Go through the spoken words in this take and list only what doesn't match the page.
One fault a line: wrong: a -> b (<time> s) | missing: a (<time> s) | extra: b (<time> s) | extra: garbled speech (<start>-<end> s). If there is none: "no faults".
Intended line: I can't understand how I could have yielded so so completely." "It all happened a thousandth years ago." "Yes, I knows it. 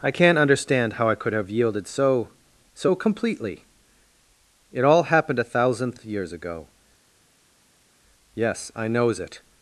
no faults